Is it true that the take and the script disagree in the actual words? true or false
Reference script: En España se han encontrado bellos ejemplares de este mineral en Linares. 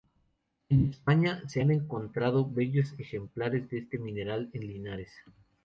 false